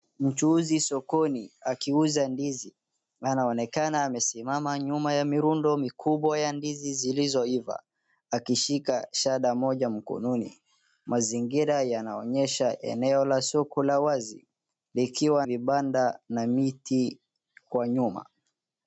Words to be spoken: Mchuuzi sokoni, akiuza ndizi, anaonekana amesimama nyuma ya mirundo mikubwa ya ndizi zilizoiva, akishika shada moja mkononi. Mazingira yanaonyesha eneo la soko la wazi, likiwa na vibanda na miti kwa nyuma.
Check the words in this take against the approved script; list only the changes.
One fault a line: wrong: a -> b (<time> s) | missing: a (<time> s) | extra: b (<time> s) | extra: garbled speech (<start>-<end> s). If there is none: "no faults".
missing: na (15.5 s)